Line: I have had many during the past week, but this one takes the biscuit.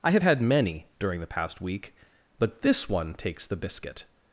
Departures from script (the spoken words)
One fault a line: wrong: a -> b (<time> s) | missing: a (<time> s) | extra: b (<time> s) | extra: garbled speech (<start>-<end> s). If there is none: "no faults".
no faults